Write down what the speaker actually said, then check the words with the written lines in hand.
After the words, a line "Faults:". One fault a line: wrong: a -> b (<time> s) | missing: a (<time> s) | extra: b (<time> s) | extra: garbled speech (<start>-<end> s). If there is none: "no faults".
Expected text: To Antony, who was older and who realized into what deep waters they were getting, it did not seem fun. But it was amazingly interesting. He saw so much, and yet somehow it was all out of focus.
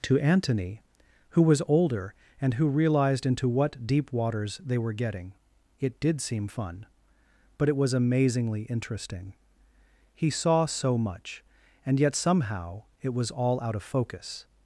To Antony, who was older and who realized into what deep waters they were getting, it did seem fun. But it was amazingly interesting. He saw so much, and yet somehow it was all out of focus.
Faults:
missing: not (6.2 s)